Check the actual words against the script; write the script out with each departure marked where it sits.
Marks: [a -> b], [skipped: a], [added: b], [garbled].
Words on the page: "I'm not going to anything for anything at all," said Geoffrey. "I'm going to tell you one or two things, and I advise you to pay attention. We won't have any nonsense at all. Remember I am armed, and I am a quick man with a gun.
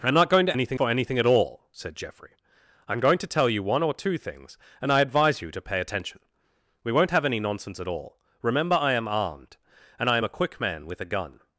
"I'm not going to anything for anything at all," said Geoffrey. "I'm going to tell you one or two things, and I advise you to pay attention. We won't have any nonsense at all. Remember I am armed, and I am a quick man with a gun.